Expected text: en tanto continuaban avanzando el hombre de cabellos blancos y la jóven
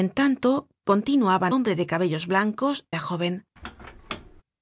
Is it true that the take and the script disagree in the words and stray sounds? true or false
true